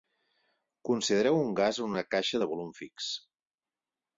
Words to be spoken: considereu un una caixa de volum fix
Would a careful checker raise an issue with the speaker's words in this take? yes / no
yes